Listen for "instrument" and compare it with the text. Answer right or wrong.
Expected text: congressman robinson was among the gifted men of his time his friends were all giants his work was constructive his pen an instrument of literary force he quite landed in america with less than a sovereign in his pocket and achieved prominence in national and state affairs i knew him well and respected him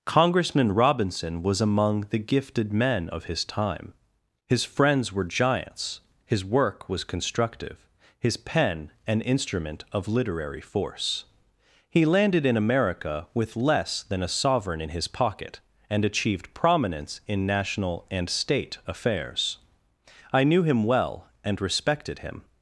right